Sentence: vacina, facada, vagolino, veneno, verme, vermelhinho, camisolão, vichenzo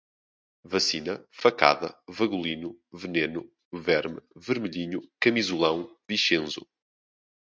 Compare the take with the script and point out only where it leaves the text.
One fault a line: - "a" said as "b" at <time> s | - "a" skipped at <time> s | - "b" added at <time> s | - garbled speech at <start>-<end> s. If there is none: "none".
none